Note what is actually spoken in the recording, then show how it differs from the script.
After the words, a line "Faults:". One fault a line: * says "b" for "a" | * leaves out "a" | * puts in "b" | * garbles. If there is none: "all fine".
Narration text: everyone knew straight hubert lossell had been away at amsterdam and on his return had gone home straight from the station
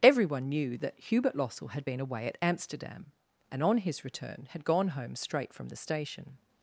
everyone knew that hubert lossell had been away at amsterdam and on his return had gone home straight from the station
Faults:
* says "that" for "straight"